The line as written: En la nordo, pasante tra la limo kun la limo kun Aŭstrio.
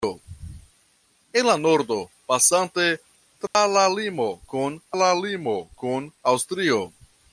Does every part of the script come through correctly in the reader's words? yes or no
yes